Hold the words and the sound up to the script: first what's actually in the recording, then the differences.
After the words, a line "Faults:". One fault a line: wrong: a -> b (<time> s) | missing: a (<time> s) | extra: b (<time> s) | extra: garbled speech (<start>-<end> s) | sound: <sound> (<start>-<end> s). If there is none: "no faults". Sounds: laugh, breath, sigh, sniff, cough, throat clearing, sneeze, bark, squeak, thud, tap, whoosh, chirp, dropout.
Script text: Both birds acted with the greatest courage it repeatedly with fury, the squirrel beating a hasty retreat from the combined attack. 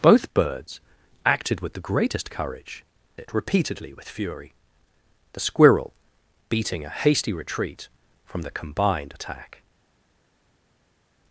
Both birds acted with the greatest courage it repeatedly with fury, the squirrel beating a hasty retreat from the combined attack.
Faults:
no faults